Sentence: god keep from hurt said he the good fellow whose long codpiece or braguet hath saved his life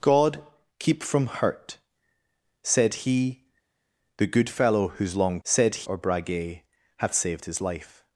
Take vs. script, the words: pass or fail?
fail